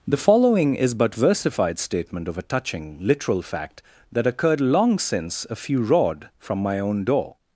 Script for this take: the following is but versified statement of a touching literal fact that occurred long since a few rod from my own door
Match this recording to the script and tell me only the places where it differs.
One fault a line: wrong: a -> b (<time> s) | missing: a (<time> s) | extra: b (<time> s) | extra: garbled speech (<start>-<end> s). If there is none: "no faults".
no faults